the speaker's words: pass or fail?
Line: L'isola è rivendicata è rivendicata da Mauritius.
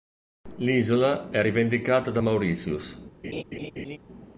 fail